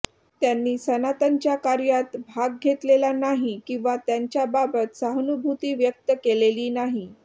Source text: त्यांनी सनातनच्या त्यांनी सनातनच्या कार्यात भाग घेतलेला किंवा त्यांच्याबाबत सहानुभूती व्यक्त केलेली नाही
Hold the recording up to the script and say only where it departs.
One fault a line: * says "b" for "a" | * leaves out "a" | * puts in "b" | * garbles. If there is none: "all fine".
* leaves out "त्यांनी सनातनच्या"
* puts in "नाही"